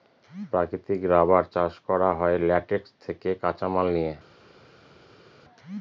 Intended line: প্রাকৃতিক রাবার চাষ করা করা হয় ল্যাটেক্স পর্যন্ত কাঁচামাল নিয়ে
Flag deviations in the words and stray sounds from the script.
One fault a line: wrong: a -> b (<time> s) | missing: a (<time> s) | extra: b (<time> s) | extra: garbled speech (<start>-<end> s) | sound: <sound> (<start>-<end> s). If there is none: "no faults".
missing: করা (2.1 s)
wrong: পর্যন্ত -> থেকে (3.0 s)